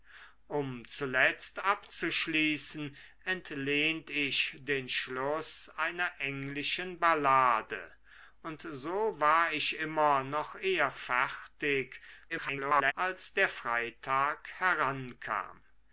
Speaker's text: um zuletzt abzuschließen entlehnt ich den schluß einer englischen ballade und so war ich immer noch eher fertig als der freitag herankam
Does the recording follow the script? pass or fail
fail